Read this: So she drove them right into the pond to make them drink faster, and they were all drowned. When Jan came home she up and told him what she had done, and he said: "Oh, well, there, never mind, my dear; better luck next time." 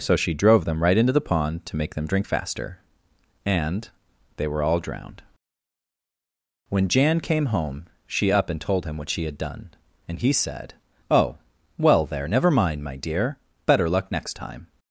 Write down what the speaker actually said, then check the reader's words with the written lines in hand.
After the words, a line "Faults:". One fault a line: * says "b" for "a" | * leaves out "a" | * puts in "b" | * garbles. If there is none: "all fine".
So she drove them right into the pond to make them drink faster, and they were all drowned. When Jan came home she up and told him what she had done, and he said: "Oh, well, there, never mind, my dear; better luck next time."
Faults:
all fine